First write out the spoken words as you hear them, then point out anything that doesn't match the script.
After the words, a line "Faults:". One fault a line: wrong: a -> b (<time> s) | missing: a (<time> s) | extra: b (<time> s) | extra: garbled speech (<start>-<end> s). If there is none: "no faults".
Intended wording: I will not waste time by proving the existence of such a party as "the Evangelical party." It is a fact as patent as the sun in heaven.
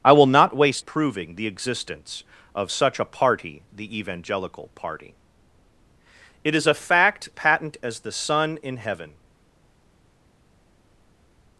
I will not waste proving the existence of such a party "the Evangelical party." It is a fact patent as the sun in heaven.
Faults:
missing: time by (0.8 s)
missing: as (3.6 s)
missing: as (7.3 s)